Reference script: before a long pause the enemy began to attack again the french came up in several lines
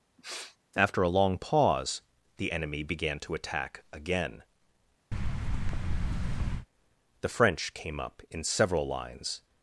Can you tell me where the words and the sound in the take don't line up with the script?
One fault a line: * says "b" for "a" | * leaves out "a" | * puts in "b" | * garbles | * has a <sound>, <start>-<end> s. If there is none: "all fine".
* has a sniff, 0.2-0.6 s
* says "after" for "before"
* has a thud, 5.1-6.7 s